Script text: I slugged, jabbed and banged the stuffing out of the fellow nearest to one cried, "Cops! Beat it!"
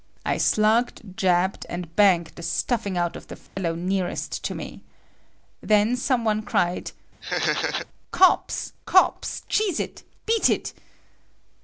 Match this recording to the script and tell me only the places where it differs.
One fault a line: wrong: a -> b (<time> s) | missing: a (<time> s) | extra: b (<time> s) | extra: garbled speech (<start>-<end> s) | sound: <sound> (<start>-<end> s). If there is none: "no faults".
sound: dropout (3.5-3.6 s)
extra: me Then some (4.5 s)
sound: laugh (7.2-7.9 s)
extra: Cops Cheese it (8.9 s)